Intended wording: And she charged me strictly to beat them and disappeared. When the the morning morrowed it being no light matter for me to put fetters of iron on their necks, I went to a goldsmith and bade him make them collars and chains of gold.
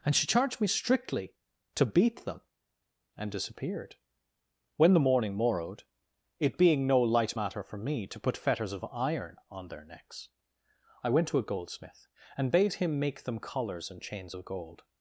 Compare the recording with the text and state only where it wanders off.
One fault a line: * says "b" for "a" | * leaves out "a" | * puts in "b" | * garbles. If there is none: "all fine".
* leaves out "the"